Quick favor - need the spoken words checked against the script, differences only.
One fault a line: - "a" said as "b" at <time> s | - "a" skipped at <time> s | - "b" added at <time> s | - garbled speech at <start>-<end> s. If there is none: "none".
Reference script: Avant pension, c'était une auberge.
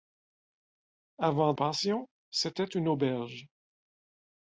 none